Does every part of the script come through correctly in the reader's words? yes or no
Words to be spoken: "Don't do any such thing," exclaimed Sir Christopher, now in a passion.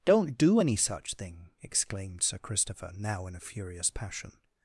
no